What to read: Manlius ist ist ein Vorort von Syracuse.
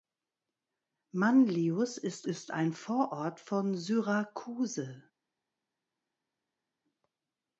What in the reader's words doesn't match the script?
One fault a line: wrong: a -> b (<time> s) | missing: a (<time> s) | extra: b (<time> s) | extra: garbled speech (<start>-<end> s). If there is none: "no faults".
no faults